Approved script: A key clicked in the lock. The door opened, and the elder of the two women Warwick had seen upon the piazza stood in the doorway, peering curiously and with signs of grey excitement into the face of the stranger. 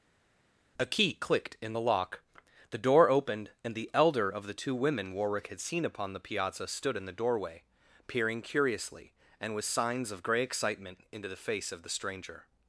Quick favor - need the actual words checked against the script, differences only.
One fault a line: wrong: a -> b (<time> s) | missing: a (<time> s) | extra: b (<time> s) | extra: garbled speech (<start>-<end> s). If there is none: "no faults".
no faults